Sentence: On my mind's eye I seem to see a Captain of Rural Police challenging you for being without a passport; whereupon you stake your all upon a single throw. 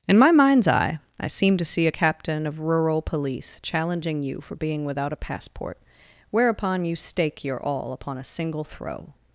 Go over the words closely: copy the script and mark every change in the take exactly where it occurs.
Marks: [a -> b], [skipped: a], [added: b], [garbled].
[On -> In] my mind's eye I seem to see a Captain of Rural Police challenging you for being without a passport; whereupon you stake your all upon a single throw.